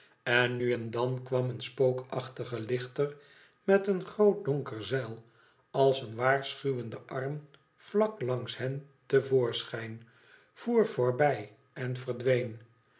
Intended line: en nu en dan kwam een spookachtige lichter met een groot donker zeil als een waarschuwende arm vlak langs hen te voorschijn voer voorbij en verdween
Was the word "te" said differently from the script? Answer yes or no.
no